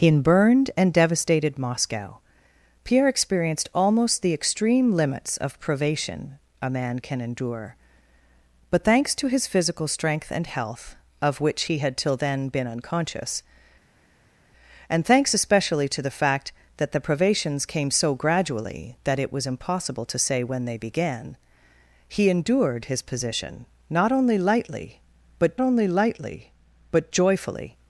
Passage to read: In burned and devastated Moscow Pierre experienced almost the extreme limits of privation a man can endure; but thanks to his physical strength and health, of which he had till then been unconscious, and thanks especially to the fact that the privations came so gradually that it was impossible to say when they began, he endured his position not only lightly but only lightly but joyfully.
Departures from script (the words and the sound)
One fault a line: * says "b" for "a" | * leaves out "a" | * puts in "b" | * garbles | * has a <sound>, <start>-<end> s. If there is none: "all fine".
all fine